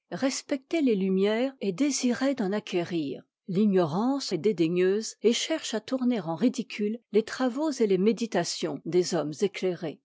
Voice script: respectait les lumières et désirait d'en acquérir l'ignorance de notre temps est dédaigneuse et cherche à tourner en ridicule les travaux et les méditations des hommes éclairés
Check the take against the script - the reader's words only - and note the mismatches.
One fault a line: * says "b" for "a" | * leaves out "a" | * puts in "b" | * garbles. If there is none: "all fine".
* leaves out "de notre temps"